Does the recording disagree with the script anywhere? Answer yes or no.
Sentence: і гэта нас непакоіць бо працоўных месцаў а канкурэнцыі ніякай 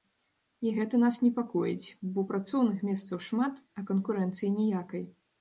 yes